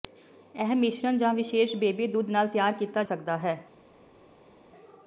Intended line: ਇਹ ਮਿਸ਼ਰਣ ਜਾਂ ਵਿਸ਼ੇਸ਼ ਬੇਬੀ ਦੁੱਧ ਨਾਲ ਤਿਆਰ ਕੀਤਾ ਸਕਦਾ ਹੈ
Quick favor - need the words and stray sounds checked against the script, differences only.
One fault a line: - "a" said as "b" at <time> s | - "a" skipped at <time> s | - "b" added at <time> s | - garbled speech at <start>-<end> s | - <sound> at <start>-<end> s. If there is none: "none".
none